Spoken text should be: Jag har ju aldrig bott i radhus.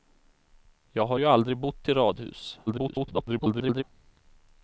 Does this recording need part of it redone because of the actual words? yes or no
yes